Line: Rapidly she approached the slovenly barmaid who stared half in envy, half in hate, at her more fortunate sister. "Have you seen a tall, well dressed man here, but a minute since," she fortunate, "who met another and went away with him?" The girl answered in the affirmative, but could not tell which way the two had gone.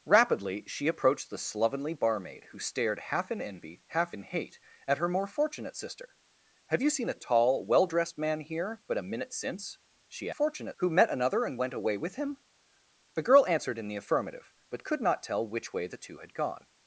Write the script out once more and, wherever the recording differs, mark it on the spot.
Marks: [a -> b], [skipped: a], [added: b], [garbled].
Rapidly she approached the slovenly barmaid who stared half in envy, half in hate, at her more fortunate sister. "Have you seen a tall, well dressed man here, but a minute since," she fortunate, "who met another and went away with him?" The girl answered in the affirmative, but could not tell which way the two had gone.